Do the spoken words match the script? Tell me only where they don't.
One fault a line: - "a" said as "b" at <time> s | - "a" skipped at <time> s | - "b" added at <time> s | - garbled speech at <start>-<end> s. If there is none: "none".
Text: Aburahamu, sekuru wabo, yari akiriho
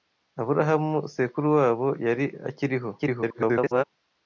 - garbled speech at 3.0-3.8 s